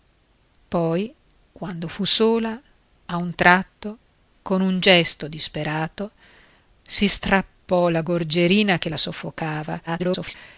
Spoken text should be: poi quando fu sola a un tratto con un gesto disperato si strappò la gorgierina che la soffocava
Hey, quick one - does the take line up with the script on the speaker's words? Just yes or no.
no